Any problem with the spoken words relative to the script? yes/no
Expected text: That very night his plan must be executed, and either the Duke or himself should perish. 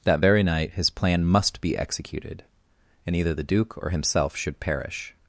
no